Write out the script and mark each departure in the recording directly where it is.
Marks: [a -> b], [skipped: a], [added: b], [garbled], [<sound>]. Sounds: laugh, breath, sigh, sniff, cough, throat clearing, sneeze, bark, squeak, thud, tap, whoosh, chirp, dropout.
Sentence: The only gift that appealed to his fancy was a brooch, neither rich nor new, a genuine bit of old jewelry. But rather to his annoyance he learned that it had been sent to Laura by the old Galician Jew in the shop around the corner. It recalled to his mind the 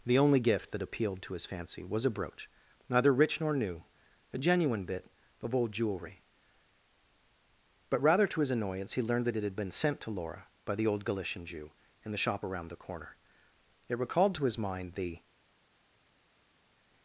The only gift that appealed to his fancy was a brooch, neither rich nor new, a genuine bit of old jewelry. But rather to his annoyance he learned that it had been sent to Laura by the old Galician Jew in the shop around the corner. It recalled to his mind the